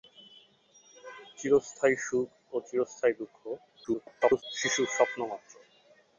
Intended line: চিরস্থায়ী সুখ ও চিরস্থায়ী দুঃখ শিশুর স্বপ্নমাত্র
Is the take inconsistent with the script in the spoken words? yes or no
yes